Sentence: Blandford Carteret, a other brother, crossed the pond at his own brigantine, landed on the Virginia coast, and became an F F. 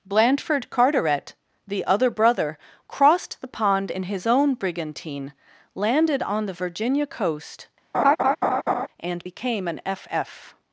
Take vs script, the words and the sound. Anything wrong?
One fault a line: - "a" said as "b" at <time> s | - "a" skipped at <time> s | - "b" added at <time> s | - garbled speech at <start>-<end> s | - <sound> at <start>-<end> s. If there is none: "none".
- "a" said as "the" at 1.7 s
- "at" said as "in" at 3.9 s
- laugh at 7.9-8.9 s